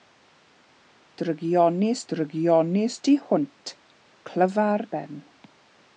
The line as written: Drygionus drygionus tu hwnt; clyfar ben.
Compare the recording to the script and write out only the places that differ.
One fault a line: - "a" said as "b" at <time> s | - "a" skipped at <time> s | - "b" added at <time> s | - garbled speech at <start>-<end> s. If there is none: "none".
none